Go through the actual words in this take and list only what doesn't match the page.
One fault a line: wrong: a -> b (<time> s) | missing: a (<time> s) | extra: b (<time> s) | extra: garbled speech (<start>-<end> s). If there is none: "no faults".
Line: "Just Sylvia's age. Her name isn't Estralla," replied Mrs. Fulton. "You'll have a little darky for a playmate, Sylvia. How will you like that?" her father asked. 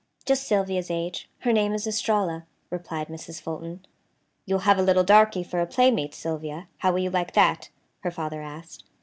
wrong: isn't -> is (1.7 s)